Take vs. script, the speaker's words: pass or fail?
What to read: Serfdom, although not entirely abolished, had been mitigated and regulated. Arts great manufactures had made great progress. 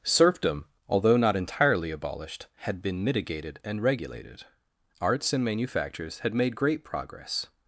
fail